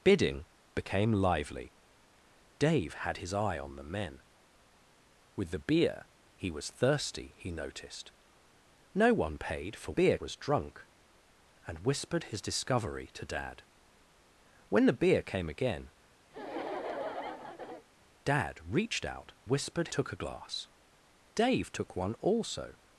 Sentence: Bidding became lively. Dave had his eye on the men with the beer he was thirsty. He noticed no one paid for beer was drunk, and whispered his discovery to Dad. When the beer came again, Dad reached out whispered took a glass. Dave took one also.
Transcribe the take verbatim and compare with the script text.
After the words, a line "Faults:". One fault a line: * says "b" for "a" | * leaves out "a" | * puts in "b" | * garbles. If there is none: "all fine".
Bidding became lively. Dave had his eye on the men with the beer he was thirsty. He noticed no one paid for beer was drunk, and whispered his discovery to Dad. When the beer came again, Dad reached out whispered took a glass. Dave took one also.
Faults:
all fine